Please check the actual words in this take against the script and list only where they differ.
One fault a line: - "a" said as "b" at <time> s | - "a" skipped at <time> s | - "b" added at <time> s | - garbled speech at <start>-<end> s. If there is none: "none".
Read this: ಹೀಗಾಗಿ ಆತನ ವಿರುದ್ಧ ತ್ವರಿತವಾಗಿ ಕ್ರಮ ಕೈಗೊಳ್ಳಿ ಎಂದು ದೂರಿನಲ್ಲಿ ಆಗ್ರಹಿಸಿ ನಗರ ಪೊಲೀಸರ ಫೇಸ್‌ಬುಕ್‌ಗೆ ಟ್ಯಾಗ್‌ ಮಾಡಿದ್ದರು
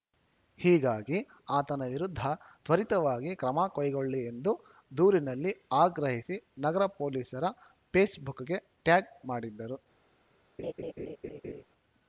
none